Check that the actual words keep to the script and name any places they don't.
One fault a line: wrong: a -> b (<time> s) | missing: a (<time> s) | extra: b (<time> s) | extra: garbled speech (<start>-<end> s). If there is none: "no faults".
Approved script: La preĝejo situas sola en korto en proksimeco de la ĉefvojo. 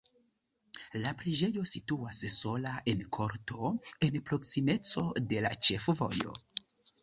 no faults